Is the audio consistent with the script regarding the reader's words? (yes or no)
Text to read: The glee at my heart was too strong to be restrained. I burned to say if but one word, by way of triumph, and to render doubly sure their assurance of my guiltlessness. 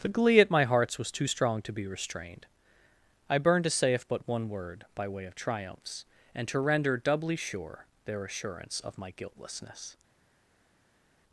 no